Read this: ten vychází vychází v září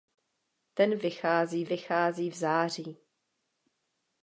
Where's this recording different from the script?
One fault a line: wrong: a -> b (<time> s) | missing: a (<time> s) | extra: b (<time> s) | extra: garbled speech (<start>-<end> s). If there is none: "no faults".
no faults